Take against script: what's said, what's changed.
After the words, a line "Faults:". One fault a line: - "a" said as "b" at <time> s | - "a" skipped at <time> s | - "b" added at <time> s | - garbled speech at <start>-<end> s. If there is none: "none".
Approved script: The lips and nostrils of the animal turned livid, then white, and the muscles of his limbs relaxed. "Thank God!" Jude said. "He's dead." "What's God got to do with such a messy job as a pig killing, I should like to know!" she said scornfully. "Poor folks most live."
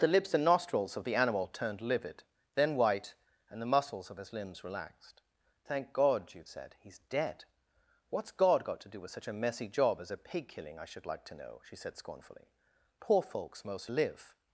The lips and nostrils of the animal turned livid, then white, and the muscles of his limbs relaxed. "Thank God!" Jude said. "He's dead." "What's God got to do with such a messy job as a pig killing, I should like to know!" she said scornfully. "Poor folks most live."
Faults:
none